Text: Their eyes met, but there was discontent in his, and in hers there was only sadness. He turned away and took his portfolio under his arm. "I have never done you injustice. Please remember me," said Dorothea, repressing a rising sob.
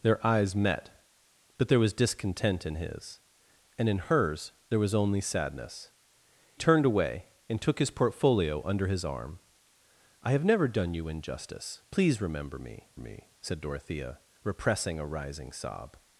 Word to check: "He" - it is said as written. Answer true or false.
false